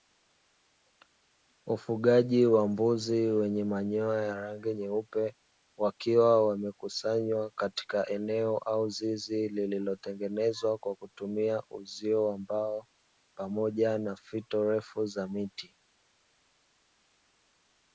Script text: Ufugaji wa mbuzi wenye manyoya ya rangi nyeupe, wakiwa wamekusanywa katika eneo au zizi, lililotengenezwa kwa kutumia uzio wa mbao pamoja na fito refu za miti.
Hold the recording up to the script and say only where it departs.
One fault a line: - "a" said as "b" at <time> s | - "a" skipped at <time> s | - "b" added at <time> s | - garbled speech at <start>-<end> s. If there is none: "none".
none